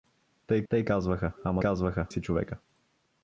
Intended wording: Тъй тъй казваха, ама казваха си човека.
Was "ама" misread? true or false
false